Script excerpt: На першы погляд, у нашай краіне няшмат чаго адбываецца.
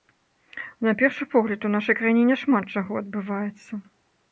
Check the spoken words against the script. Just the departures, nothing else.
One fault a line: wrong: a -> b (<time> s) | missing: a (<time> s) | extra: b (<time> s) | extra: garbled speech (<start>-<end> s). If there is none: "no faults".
no faults